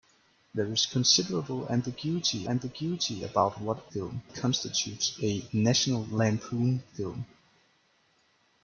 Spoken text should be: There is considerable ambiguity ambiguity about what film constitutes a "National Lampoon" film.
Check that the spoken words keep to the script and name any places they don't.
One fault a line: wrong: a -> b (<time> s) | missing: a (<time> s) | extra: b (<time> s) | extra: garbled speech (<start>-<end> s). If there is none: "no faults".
no faults